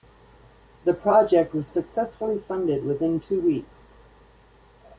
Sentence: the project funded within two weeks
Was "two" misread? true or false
false